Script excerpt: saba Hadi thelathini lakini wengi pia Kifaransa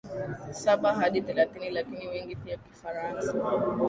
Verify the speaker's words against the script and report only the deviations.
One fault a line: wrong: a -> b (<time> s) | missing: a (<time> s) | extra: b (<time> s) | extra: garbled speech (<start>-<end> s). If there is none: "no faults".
no faults